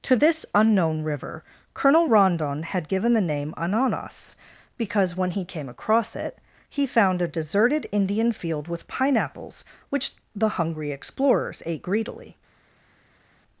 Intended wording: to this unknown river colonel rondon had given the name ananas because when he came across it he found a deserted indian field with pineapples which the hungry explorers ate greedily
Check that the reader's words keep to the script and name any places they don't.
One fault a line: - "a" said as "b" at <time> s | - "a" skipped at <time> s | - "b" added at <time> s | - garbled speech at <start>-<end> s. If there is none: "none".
none